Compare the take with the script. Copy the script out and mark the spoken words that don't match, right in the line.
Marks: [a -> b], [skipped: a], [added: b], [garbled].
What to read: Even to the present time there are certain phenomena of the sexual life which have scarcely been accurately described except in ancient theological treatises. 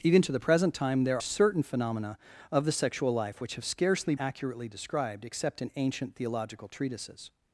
Even to the present time there [skipped: are] certain phenomena of the sexual life which have scarcely [skipped: been] accurately described except in ancient theological treatises.